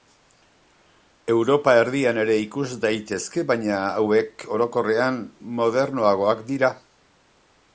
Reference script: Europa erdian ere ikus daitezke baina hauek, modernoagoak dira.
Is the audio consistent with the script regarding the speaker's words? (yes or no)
no